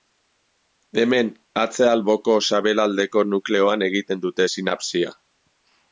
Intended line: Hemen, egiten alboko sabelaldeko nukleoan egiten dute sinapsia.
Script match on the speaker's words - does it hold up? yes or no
no